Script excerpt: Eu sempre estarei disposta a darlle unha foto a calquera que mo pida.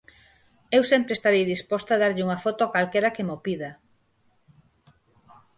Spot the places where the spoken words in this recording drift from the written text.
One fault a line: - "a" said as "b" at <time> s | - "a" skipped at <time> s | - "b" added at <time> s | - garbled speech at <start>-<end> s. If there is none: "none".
none